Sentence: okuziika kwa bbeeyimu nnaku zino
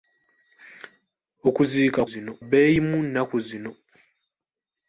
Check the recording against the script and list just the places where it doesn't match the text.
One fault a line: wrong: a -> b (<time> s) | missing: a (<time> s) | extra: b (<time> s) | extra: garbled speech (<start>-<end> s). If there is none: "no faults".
wrong: kwa -> zino (2.1 s)